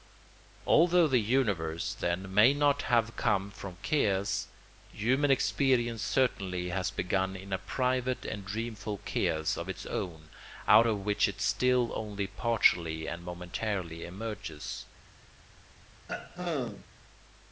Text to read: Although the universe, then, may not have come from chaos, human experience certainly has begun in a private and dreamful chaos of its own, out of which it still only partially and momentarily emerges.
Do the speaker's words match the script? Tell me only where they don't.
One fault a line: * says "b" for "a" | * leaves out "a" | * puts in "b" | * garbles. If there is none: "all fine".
all fine